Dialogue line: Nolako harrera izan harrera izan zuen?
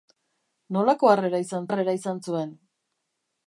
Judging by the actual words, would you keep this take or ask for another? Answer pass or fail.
pass